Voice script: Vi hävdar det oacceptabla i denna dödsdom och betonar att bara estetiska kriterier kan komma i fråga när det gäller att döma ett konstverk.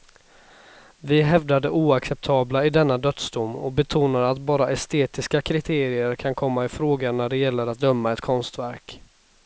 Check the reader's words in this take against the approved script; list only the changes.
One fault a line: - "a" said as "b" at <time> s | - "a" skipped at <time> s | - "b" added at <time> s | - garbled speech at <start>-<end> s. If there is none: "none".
none